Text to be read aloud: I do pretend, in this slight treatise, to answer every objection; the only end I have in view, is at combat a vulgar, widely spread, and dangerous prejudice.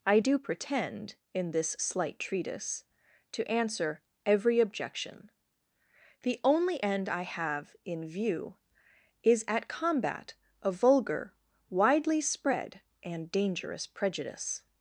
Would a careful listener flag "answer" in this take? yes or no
no